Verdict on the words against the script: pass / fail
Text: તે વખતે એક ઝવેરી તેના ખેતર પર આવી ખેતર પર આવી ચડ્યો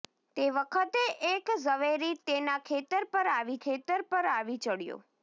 pass